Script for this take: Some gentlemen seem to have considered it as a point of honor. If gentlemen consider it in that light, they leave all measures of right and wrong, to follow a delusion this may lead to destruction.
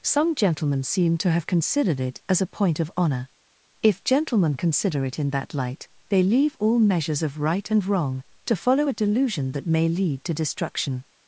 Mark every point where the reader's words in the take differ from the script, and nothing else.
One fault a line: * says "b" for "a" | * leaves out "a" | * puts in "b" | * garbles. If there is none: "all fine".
* says "that" for "this"